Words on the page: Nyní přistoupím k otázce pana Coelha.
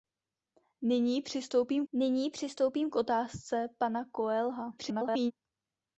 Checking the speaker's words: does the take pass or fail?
fail